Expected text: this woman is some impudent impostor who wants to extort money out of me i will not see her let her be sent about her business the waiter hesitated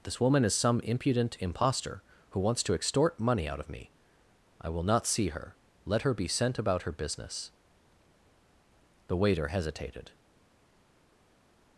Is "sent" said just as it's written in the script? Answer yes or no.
yes